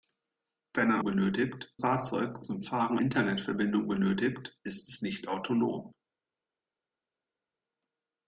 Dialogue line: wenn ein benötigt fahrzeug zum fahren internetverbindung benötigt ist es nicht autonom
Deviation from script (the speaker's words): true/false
false